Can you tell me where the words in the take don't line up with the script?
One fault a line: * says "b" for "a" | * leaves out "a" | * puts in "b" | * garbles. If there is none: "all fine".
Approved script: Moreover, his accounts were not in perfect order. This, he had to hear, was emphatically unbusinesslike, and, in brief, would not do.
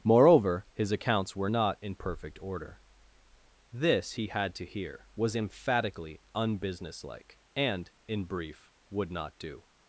all fine